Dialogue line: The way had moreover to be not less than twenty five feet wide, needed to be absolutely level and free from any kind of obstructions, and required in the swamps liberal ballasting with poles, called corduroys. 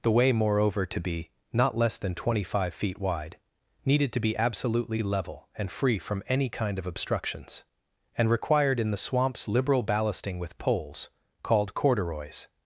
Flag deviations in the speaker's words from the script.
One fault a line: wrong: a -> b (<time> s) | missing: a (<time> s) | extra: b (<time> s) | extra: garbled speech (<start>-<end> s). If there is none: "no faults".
missing: had (0.3 s)